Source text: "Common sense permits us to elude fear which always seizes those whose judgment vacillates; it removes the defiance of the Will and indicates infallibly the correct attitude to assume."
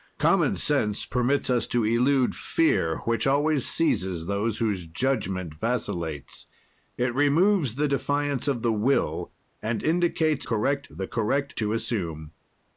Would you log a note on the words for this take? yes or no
yes